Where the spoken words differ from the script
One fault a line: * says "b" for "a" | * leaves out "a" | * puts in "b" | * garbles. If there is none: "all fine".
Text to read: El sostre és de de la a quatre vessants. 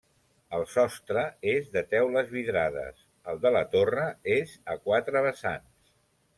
* puts in "teules vidrades el"
* puts in "torre és"